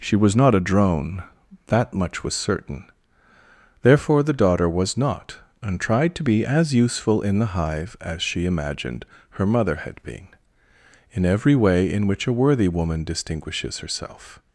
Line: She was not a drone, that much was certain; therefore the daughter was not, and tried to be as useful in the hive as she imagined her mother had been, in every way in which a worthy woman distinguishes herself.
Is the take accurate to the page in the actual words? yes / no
yes